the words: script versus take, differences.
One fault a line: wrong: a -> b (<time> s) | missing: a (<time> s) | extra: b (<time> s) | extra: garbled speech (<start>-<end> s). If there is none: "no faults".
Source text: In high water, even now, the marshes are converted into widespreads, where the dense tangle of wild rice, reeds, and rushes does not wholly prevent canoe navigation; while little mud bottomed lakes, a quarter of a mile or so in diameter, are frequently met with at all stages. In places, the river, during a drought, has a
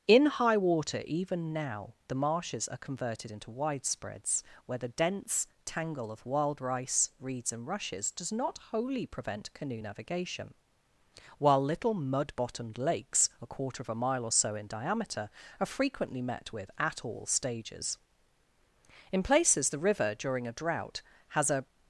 no faults